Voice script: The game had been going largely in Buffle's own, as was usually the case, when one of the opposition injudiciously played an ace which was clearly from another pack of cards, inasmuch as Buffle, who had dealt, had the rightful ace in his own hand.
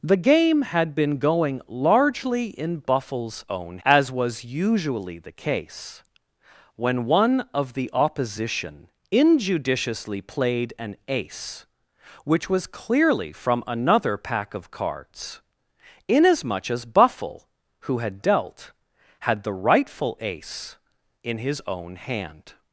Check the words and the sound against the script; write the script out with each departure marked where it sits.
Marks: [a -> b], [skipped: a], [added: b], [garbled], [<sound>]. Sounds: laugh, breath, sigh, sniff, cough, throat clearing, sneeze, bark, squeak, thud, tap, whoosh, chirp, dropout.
The game had been going largely in Buffle's own, as was usually the case, when one of the opposition injudiciously played an ace which was clearly from another pack of cards, inasmuch as Buffle, who had dealt, had the rightful ace in his own hand.